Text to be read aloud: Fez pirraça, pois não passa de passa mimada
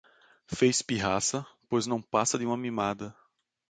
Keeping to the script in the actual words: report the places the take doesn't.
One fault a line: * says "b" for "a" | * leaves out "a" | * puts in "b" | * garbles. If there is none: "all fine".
* says "uma" for "passa"